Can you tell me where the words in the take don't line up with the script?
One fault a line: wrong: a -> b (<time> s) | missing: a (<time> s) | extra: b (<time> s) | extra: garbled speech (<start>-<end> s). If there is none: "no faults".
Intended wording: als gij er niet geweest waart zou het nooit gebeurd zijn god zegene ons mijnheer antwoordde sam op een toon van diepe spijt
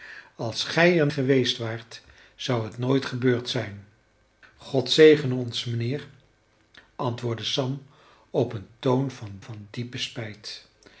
missing: niet (1.1 s)
extra: van (9.4 s)